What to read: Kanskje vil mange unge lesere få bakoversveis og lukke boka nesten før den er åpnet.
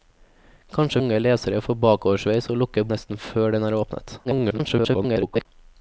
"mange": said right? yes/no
no